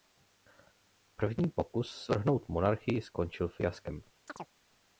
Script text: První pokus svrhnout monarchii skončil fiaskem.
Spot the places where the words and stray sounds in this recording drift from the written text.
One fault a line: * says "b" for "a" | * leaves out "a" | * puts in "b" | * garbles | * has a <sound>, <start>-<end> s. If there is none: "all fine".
* has a chirp, 4.3-4.5 s